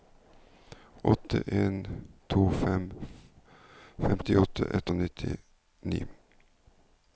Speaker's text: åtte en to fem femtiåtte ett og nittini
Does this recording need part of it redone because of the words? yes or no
no